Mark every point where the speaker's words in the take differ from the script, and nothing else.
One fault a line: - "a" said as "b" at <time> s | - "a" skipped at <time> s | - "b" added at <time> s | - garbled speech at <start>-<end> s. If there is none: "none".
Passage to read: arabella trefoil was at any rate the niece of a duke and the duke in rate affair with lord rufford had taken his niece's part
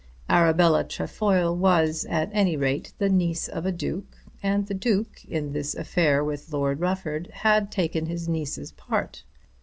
- "rate" said as "this" at 5.5 s